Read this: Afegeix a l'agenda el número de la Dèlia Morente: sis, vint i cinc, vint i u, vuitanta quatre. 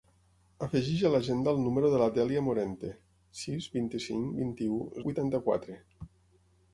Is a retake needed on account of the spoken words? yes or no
no